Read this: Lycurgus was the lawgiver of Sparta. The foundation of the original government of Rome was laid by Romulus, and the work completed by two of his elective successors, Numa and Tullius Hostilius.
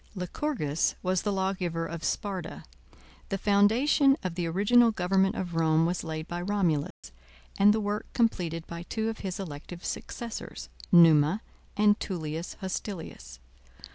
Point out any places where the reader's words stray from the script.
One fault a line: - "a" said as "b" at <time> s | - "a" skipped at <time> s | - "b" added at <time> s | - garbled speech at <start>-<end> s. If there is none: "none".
none